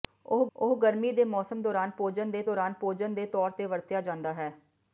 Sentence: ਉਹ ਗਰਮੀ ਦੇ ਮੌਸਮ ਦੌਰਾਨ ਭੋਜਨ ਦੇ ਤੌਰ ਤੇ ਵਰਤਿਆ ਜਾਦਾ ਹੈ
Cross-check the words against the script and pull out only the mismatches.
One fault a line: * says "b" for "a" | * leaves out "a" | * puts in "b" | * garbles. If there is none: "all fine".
* puts in "ਉਹ"
* puts in "ਦੌਰਾਨ ਭੋਜਨ ਦੇ"